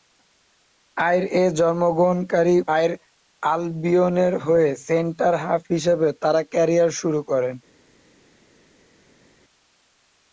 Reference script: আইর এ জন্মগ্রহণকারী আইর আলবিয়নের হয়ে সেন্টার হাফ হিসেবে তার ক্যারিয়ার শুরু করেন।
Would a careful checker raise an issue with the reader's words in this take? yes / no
no